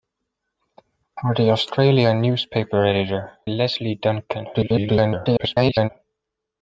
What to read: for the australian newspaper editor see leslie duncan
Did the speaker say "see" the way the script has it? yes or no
no